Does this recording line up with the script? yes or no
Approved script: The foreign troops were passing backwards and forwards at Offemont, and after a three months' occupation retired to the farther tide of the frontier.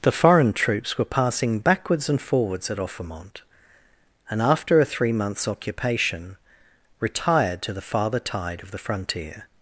yes